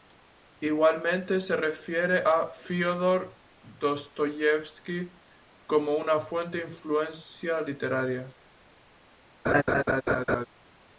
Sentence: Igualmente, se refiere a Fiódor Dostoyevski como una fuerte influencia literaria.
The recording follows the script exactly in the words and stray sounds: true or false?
false